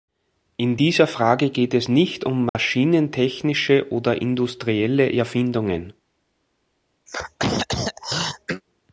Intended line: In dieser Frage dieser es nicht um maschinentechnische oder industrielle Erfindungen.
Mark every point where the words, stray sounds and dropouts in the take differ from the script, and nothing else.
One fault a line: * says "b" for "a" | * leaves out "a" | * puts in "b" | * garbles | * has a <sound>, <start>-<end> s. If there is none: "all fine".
* says "geht" for "dieser"
* has a dropout, 2.5-2.6 s
* has a throat clearing, 7.1-8.6 s